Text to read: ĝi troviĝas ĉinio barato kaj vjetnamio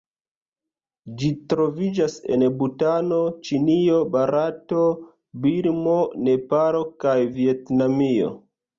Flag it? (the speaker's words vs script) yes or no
yes